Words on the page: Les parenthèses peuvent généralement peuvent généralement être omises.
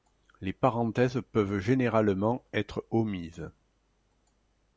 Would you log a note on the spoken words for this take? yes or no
yes